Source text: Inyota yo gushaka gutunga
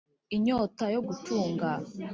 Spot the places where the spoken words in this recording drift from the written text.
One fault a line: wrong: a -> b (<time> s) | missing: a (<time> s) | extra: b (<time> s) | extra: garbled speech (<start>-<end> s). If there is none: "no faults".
missing: gushaka (1.0 s)